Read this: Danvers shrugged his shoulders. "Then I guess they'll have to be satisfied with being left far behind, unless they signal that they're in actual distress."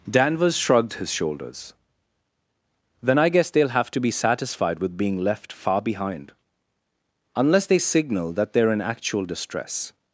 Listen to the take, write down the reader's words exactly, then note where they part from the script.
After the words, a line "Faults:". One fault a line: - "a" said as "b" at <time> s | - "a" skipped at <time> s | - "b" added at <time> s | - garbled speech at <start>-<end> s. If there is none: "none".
Danvers shrugged his shoulders. "Then I guess they'll have to be satisfied with being left far behind, unless they signal that they're in actual distress."
Faults:
none